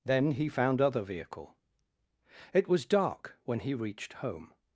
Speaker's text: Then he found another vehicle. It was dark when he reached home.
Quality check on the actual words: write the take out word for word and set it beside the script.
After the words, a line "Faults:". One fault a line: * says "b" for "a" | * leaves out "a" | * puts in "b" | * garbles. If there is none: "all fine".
Then he found other vehicle. It was dark when he reached home.
Faults:
* says "other" for "another"